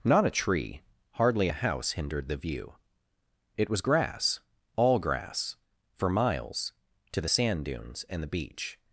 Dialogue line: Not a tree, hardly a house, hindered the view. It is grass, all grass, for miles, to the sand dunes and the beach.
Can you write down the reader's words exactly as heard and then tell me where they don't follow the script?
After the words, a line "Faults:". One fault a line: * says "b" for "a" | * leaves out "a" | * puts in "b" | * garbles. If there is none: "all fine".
Not a tree, hardly a house, hindered the view. It was grass, all grass, for miles, to the sand dunes and the beach.
Faults:
* says "was" for "is"